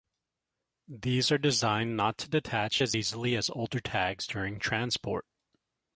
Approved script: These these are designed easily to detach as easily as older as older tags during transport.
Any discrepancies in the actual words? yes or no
yes